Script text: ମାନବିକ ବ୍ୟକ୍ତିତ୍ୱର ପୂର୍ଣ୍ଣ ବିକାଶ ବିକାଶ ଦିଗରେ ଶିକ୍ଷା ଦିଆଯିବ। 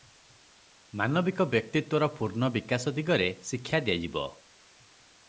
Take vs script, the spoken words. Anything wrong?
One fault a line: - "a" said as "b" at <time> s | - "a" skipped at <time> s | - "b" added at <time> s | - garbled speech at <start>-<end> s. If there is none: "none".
- "ବିକାଶ" skipped at 2.9 s